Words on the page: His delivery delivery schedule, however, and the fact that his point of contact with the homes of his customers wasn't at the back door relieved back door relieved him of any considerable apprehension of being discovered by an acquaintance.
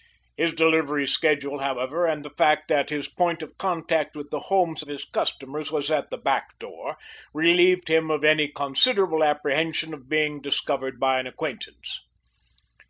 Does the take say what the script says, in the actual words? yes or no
no